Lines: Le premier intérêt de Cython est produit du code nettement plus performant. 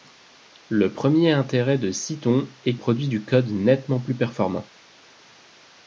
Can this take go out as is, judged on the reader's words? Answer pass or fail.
pass